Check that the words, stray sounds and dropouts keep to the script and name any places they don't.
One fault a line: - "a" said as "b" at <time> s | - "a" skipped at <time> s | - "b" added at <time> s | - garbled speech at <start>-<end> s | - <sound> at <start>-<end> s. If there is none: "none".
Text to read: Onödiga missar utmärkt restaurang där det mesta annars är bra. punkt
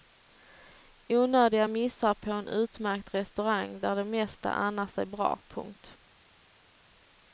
- "på en" added at 2.1 s